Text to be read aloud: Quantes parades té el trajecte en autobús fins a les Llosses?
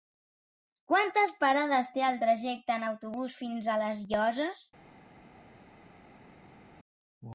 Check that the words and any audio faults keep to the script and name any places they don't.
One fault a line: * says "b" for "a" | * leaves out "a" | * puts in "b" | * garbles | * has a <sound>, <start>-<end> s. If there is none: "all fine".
all fine